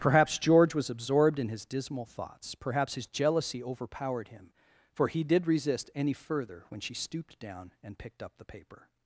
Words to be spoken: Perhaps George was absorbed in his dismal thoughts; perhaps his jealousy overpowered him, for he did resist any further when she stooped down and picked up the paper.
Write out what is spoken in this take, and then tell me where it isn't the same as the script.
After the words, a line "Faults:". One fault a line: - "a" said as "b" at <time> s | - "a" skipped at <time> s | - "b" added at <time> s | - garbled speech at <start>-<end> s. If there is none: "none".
Perhaps George was absorbed in his dismal thoughts; perhaps his jealousy overpowered him, for he did resist any further when she stooped down and picked up the paper.
Faults:
none